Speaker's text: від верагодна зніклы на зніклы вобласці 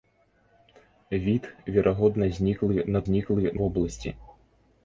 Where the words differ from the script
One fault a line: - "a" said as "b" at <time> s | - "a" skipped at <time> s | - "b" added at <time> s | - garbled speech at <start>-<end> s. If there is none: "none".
none